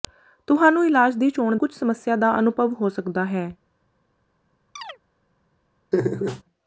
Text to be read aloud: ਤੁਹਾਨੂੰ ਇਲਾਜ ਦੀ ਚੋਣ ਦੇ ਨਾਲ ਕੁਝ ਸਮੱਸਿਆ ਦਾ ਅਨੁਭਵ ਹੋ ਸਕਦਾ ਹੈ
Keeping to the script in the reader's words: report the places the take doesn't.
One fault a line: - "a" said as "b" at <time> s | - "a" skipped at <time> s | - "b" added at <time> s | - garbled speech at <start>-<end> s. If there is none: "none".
- "ਦੇ ਨਾਲ" skipped at 1.6 s